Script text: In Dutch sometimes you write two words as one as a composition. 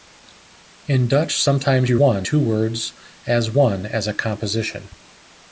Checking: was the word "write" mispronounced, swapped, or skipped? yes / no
yes